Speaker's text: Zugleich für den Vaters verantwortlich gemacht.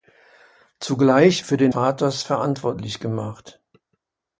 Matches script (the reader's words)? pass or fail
pass